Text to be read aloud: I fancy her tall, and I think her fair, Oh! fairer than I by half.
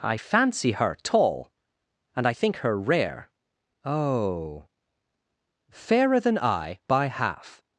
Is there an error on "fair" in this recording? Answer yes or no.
yes